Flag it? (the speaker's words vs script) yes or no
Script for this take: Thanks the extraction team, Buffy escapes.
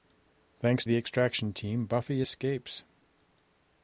no